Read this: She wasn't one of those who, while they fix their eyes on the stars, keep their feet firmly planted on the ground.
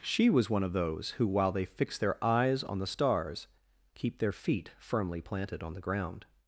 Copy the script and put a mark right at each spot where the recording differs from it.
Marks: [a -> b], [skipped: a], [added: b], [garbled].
She [wasn't -> was] one of those who, while they fix their eyes on the stars, keep their feet firmly planted on the ground.